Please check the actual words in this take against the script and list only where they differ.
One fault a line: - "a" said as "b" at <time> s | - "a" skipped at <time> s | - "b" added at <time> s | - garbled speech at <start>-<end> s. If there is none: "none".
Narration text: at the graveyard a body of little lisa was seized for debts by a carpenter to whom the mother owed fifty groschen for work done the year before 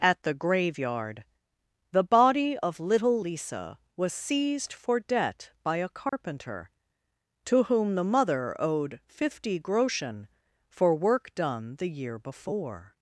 - "a" said as "the" at 1.9 s
- "debts" said as "debt" at 5.0 s